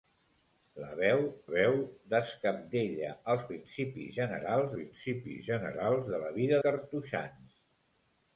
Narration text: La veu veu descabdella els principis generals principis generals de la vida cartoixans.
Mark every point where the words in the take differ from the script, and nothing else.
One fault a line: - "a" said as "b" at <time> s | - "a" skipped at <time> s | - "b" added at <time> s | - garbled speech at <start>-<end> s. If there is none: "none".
none